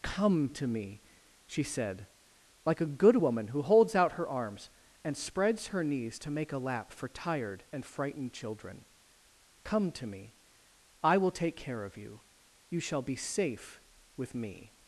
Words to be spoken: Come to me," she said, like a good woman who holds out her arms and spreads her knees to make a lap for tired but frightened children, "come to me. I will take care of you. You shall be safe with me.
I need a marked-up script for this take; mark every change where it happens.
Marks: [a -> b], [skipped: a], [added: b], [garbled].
Come to me," she said, like a good woman who holds out her arms and spreads her knees to make a lap for tired [but -> and] frightened children, "come to me. I will take care of you. You shall be safe with me.